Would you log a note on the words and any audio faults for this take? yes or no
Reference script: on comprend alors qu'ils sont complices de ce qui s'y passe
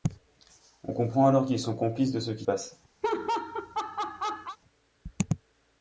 yes